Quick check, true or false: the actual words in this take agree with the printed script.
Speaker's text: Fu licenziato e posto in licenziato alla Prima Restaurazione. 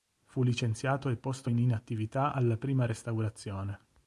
false